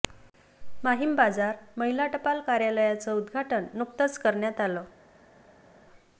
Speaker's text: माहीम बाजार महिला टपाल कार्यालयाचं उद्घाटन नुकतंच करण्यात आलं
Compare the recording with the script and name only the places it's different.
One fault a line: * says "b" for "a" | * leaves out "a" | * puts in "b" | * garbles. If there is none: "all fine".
all fine